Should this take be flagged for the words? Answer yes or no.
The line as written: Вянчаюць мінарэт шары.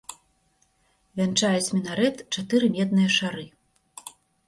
yes